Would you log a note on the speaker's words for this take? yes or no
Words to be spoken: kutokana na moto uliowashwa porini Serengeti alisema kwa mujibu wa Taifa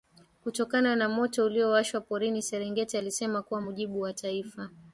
no